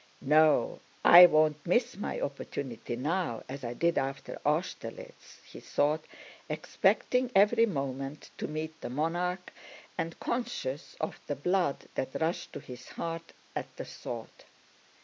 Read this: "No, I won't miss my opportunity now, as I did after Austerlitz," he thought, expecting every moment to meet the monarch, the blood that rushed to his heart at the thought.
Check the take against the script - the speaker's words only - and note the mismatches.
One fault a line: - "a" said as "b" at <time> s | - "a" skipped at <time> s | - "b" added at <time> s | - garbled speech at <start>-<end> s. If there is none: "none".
- "and conscious of" added at 10.0 s